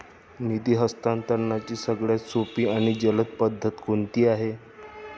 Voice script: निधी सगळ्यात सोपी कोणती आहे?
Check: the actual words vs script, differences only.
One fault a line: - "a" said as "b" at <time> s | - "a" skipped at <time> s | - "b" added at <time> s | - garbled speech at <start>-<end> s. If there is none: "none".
- "हस्तांतरणाची" added at 0.8 s
- "आणि जलद पद्धत" added at 2.7 s